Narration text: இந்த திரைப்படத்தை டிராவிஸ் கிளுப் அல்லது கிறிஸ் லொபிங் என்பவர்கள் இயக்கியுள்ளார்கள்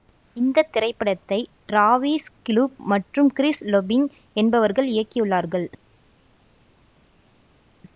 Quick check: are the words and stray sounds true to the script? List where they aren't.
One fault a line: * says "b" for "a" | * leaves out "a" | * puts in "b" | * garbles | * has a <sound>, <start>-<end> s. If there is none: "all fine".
* says "மற்றும்" for "அல்லது"